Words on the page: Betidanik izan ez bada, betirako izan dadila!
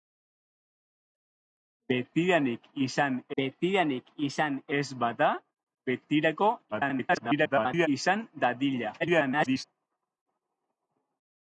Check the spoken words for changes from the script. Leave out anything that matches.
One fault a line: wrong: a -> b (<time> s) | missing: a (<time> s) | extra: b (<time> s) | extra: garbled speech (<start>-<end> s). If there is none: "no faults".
extra: betidanik izan (3.4 s)
extra: garbled speech (6.7-7.9 s)
extra: garbled speech (9.0-9.6 s)